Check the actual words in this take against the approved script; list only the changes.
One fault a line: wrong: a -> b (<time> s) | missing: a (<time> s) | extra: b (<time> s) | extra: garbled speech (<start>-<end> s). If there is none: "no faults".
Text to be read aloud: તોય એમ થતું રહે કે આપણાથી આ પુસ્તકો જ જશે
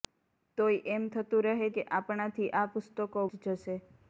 no faults